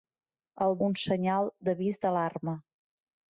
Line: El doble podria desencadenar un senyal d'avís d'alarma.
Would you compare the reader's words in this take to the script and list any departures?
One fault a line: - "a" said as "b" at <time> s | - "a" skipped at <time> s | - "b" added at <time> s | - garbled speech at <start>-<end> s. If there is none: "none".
- "doble podria desencadenar" skipped at 0.7 s